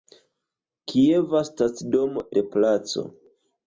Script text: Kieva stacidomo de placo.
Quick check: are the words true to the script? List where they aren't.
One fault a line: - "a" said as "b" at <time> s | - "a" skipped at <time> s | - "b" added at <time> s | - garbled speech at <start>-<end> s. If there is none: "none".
none